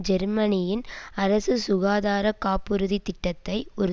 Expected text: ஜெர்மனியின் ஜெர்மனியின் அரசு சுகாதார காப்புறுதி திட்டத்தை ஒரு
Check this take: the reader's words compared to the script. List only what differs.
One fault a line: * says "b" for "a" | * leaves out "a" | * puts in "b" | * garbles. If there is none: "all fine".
* leaves out "ஜெர்மனியின்"